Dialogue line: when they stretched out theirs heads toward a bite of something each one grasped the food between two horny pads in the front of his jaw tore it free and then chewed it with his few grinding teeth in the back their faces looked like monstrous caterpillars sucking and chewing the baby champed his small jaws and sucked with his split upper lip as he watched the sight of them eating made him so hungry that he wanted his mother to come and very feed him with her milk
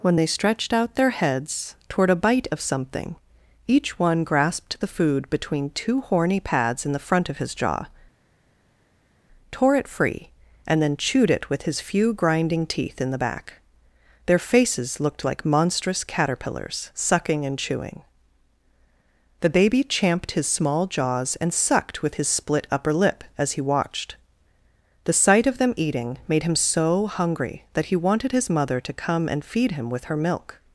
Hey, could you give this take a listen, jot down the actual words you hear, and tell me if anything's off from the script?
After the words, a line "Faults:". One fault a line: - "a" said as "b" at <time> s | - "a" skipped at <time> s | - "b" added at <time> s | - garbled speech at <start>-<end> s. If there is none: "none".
when they stretched out their heads toward a bite of something each one grasped the food between two horny pads in the front of his jaw tore it free and then chewed it with his few grinding teeth in the back their faces looked like monstrous caterpillars sucking and chewing the baby champed his small jaws and sucked with his split upper lip as he watched the sight of them eating made him so hungry that he wanted his mother to come and feed him with her milk
Faults:
- "theirs" said as "their" at 0.9 s
- "very" skipped at 29.4 s